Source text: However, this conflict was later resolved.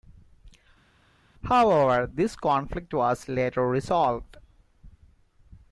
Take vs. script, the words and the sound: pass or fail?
pass